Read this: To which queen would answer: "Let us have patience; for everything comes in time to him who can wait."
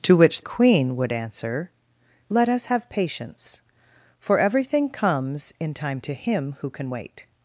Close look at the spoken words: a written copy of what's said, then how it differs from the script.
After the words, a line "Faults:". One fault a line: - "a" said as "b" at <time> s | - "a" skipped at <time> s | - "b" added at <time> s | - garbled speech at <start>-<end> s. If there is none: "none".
To which queen would answer: "Let us have patience; for everything comes in time to him who can wait."
Faults:
none